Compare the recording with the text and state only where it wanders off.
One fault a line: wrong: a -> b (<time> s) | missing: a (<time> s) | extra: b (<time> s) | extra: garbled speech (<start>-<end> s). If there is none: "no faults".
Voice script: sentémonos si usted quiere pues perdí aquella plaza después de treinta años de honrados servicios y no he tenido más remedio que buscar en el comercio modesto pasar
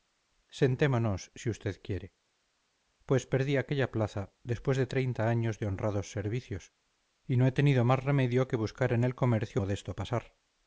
no faults